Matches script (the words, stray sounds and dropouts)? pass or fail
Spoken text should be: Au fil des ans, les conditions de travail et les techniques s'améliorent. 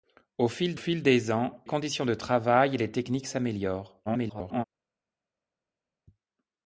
fail